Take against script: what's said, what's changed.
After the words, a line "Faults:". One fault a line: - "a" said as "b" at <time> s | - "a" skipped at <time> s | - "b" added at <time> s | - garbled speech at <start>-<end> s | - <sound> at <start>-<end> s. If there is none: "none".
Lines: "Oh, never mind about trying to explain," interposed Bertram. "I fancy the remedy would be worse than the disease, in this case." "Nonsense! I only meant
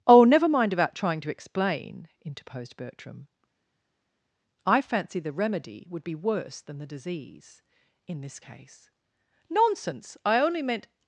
"Oh, never mind about trying to explain," interposed Bertram. "I fancy the remedy would be worse than the disease, in this case." "Nonsense! I only meant
Faults:
none